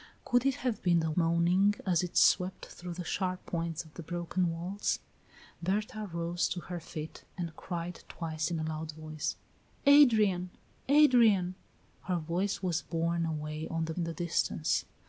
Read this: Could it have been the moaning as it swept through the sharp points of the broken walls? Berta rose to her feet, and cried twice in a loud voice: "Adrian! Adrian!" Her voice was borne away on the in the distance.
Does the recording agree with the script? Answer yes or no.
yes